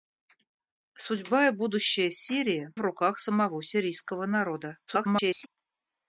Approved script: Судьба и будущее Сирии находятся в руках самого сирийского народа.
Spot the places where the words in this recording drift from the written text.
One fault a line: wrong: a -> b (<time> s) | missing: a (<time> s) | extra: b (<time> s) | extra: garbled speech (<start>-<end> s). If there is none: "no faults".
missing: находятся (2.7 s)
extra: garbled speech (4.9-5.5 s)